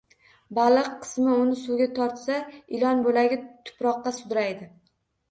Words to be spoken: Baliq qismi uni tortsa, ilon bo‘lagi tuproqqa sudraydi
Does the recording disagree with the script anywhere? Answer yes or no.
yes